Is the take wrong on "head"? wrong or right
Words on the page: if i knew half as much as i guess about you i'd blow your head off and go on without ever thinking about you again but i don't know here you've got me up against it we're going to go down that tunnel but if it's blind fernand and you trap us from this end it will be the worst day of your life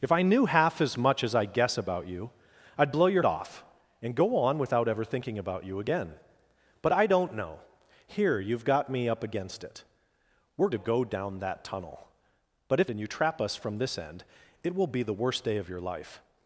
wrong